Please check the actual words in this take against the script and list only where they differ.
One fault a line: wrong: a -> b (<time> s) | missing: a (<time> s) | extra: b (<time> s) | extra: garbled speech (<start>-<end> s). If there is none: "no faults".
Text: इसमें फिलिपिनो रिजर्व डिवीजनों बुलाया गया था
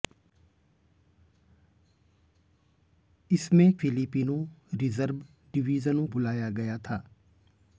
no faults